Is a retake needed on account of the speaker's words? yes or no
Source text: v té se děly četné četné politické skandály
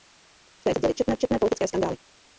no